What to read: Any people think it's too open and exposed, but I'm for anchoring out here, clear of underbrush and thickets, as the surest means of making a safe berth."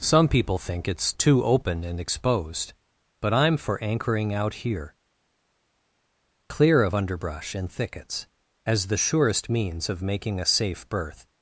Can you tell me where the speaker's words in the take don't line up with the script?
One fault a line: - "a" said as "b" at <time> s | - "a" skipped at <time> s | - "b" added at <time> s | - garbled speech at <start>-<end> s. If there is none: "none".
- "Any" said as "Some" at 0.0 s